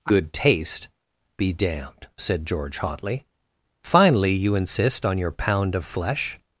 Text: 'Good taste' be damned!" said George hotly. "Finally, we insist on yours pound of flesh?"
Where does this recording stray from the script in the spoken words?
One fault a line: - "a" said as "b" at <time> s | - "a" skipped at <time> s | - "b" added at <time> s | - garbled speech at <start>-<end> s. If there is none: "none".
- "we" said as "you" at 4.3 s
- "yours" said as "your" at 5.2 s